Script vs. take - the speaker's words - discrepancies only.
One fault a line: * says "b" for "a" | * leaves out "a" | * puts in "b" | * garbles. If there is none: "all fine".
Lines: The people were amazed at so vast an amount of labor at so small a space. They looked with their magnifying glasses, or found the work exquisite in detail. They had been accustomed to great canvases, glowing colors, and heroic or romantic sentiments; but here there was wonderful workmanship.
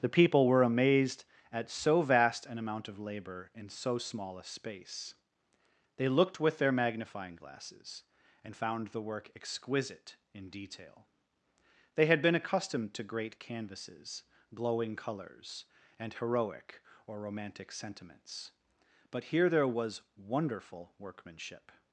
* says "in" for "at"
* says "and" for "or"